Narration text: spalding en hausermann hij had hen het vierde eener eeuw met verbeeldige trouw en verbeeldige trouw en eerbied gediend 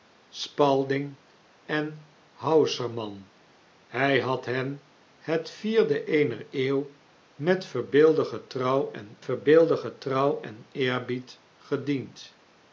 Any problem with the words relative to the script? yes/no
no